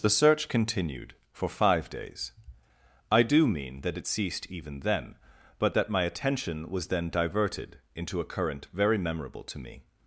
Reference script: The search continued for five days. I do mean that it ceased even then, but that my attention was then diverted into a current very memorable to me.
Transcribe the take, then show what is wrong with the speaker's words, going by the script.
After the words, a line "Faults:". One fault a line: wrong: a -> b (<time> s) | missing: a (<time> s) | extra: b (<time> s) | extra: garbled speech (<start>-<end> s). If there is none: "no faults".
The search continued for five days. I do mean that it ceased even then, but that my attention was then diverted into a current very memorable to me.
Faults:
no faults